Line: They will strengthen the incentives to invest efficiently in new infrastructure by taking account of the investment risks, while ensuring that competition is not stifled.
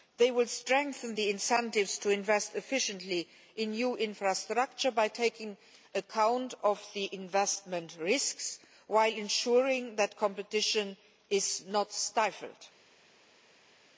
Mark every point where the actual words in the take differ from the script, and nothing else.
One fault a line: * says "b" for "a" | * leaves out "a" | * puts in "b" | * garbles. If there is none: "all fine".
all fine